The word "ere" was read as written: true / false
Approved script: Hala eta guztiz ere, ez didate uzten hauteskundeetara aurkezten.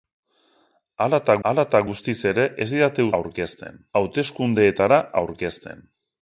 true